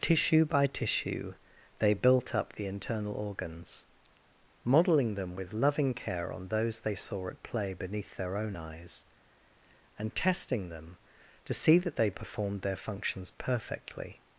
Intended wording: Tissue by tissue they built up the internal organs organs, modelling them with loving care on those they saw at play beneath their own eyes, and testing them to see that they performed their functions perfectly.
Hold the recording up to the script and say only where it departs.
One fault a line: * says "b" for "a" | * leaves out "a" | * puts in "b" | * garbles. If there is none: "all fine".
* leaves out "organs"